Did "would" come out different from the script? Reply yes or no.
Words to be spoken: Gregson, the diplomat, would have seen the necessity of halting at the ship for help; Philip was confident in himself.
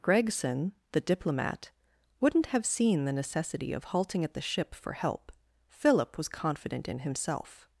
yes